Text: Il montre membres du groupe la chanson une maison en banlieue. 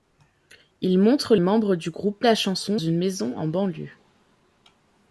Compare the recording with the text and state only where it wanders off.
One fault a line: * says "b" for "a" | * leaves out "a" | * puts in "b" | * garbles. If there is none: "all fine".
all fine